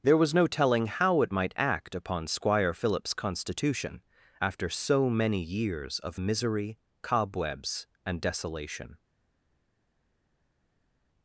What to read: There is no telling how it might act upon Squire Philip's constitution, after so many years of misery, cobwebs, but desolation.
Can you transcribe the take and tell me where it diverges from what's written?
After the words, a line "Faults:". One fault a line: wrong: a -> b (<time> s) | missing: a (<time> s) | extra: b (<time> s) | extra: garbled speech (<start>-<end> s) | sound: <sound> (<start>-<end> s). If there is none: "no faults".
There was no telling how it might act upon Squire Philip's constitution, after so many years of misery, cobwebs, and desolation.
Faults:
wrong: is -> was (0.2 s)
wrong: but -> and (8.0 s)